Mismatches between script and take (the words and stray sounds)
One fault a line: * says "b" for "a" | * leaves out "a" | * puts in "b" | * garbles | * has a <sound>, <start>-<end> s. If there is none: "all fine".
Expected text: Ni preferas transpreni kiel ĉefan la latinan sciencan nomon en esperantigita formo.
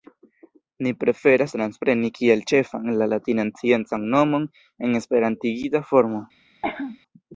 * has a cough, 6.6-7.0 s